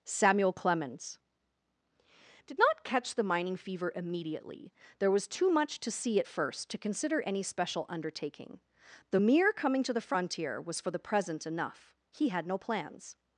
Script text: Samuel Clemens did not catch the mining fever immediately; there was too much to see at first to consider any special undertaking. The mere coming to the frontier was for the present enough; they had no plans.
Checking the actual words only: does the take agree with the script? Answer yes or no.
no